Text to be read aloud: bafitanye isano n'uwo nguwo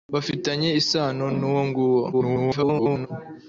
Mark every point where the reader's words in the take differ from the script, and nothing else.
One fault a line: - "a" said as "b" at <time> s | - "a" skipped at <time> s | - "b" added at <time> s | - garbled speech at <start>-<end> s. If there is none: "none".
- garbled speech at 2.1-3.1 s